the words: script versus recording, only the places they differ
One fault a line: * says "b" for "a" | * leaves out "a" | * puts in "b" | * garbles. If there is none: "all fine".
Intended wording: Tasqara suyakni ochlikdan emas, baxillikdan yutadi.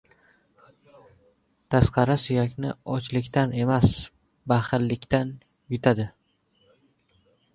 all fine